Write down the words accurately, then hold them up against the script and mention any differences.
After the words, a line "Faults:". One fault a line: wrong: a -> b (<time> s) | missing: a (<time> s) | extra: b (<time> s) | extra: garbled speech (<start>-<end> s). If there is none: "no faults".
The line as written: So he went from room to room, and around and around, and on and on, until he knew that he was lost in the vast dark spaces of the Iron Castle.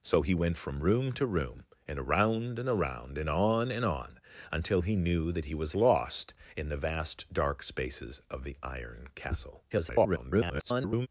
So he went from room to room, and around and around, and on and on, until he knew that he was lost in the vast dark spaces of the Iron Castle. [garbled]
Faults:
extra: garbled speech (9.7-11.1 s)